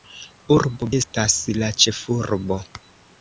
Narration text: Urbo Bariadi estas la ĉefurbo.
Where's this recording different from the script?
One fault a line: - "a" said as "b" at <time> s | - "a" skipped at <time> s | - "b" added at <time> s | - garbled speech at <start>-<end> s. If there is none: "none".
- "Bariadi" skipped at 0.9 s